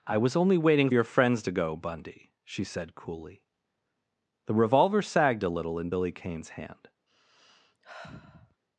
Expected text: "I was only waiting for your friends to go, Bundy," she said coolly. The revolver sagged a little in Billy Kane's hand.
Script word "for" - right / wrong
wrong